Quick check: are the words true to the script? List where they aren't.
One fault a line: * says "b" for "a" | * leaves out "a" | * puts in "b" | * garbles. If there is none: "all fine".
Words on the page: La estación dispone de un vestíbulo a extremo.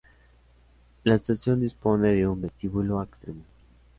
all fine